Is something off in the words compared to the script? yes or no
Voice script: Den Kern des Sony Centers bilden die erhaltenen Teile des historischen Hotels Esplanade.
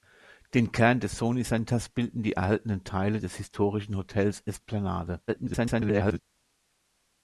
yes